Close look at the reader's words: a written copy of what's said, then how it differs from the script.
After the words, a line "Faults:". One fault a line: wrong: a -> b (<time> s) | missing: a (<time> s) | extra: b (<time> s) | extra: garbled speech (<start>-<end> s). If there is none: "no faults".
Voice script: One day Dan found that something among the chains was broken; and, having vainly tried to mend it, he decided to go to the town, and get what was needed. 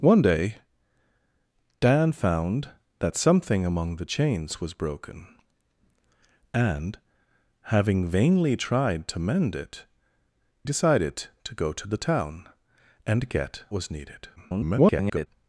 One day Dan found that something among the chains was broken; and, having vainly tried to mend it, decided to go to the town, and get was needed. [garbled]
Faults:
missing: he (9.8 s)
missing: what (13.6 s)
extra: garbled speech (14.4-15.3 s)